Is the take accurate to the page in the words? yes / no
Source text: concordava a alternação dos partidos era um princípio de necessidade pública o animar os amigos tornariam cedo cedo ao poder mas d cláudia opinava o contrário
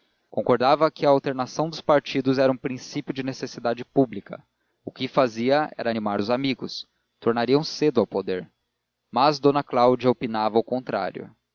no